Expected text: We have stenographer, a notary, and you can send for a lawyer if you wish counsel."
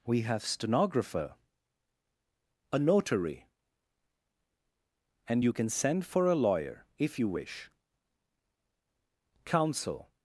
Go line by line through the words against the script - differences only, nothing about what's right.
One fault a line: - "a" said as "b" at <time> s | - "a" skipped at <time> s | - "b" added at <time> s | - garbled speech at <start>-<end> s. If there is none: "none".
none